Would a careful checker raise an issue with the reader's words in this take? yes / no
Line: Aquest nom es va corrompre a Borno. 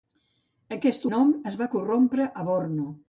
no